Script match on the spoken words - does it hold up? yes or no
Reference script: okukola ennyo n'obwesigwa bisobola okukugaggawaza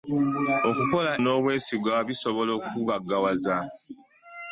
no